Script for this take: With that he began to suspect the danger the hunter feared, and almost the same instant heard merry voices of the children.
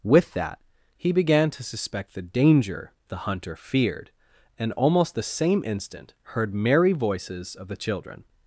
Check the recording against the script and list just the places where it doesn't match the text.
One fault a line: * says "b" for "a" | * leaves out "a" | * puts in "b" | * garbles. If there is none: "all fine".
all fine